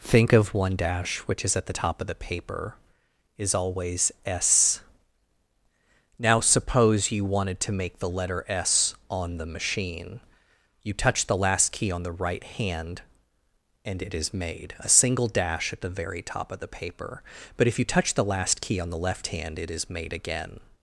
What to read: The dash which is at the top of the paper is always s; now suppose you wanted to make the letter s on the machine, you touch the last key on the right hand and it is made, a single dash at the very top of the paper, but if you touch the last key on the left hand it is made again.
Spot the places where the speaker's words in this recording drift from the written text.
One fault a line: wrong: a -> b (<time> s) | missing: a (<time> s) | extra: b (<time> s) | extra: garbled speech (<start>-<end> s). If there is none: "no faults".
wrong: The -> Think of one (0.0 s)